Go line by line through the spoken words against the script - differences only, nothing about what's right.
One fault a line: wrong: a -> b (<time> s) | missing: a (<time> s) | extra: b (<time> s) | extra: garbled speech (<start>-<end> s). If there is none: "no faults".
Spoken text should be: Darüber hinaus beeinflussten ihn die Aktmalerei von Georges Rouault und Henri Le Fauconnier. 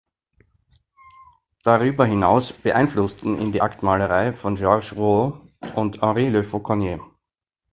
no faults